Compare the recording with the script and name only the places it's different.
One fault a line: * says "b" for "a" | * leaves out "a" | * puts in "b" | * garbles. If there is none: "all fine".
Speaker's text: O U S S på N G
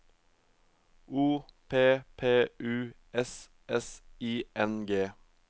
* puts in "P P"
* says "I" for "på"